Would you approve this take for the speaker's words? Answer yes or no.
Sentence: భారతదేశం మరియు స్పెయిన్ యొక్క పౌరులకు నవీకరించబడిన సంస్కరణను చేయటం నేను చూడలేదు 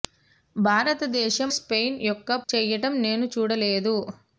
no